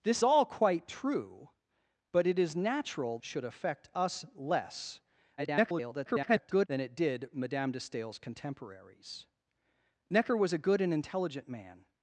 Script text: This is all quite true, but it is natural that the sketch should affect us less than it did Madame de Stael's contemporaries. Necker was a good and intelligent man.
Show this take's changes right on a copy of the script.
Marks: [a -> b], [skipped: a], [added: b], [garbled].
This [skipped: is] all quite true, but it is natural [skipped: that the sketch] should affect us less [garbled] than it did Madame de Stael's contemporaries. Necker was a good and intelligent man.